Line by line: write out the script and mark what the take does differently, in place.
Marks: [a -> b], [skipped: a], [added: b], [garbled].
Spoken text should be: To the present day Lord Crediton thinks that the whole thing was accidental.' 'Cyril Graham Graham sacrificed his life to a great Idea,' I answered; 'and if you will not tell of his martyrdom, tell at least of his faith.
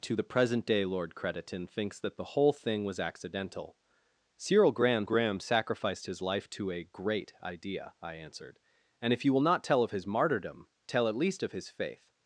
To the present day Lord Crediton thinks that the whole thing was accidental.' 'Cyril Graham Graham sacrificed his life to a great Idea,' I answered; 'and if you will not tell of his martyrdom, tell at least of his faith.